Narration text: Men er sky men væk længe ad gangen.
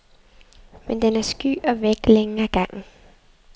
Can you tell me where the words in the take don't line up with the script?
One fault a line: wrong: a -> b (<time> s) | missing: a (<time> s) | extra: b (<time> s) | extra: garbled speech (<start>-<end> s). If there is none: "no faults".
extra: den (1.0 s)
wrong: men -> og (1.6 s)